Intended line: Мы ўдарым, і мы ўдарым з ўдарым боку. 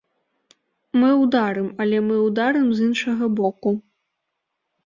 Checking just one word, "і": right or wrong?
wrong